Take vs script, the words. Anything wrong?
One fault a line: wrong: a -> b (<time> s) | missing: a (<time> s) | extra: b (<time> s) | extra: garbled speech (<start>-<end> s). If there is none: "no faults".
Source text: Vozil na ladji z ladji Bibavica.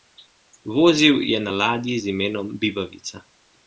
extra: je (1.2 s)
wrong: ladji -> imenom (2.1 s)